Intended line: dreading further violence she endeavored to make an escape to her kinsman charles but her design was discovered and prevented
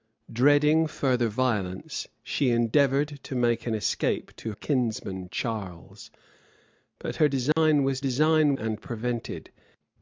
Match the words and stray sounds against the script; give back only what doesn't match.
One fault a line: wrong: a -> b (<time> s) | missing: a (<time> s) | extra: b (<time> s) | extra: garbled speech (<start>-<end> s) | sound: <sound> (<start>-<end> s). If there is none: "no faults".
missing: her (4.5 s)
sound: dropout (7.5-7.6 s)
wrong: discovered -> design (8.0 s)